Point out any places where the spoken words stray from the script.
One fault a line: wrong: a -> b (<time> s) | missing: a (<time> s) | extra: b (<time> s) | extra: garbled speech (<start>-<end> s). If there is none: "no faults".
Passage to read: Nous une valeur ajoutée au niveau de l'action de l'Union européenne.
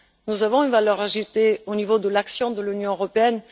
extra: avons (0.4 s)